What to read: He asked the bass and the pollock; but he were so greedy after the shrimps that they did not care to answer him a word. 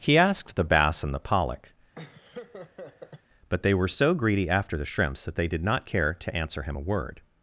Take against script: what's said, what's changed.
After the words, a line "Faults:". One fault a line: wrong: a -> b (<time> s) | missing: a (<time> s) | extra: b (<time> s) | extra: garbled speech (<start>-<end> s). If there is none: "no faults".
He asked the bass and the pollock; but they were so greedy after the shrimps that they did not care to answer him a word.
Faults:
wrong: he -> they (3.6 s)